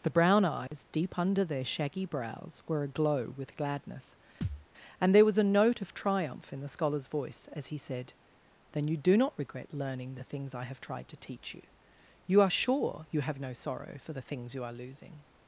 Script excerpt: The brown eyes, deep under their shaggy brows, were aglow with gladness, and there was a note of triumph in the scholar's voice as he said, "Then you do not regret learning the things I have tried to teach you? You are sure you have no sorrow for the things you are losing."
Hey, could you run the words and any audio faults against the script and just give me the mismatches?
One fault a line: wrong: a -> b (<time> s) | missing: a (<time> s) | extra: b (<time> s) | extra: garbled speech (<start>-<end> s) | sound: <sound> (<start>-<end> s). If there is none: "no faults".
sound: dropout (0.7-0.7 s)
sound: thud (4.4-4.7 s)